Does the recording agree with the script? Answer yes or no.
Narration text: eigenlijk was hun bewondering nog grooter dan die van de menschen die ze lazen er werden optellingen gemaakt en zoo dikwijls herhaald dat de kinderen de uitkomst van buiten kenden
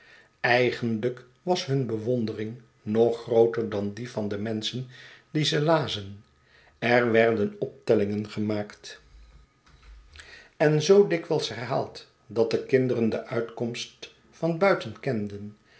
yes